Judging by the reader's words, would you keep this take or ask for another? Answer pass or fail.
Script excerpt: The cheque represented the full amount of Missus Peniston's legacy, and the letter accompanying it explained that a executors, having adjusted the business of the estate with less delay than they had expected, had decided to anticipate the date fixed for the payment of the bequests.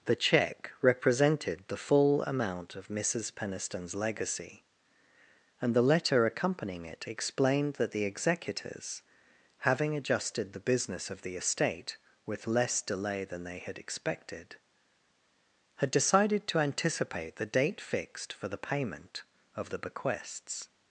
fail